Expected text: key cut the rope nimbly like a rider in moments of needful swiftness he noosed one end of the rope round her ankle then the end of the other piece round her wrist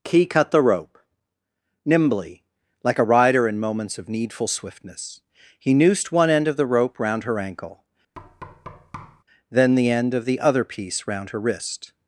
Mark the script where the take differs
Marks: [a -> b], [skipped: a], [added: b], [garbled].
key cut the rope nimbly like a rider in moments of needful swiftness he noosed one end of the rope round her ankle then the end of the other piece round her wrist